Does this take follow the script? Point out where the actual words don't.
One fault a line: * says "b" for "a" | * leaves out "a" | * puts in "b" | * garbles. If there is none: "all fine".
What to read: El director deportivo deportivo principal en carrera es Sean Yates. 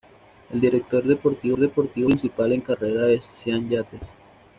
all fine